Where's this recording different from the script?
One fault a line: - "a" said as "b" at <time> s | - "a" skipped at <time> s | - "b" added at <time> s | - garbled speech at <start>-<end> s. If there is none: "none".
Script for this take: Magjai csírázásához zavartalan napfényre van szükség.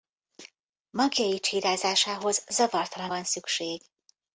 - "napfényre" skipped at 3.1 s